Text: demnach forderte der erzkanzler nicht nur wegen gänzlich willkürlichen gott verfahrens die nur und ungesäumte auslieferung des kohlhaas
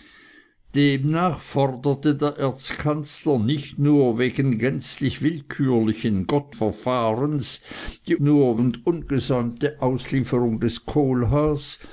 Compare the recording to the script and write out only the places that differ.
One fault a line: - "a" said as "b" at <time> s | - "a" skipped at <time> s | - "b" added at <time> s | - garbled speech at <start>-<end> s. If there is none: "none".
none